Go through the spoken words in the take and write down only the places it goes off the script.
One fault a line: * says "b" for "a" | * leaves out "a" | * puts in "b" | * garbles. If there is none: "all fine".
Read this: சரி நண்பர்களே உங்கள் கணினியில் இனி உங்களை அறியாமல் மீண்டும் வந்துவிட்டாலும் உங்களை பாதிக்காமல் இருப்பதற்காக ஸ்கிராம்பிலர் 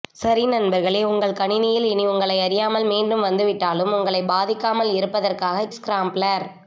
all fine